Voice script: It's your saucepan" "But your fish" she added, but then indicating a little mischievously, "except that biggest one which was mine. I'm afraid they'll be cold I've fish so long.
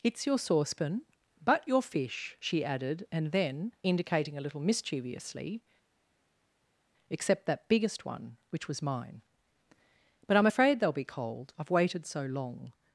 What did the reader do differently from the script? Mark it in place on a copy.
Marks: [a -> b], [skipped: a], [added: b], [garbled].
It's your saucepan" "But your fish" she added, [but -> and] then indicating a little mischievously, "except that biggest one which was mine. [added: But] I'm afraid they'll be cold I've [fish -> waited] so long.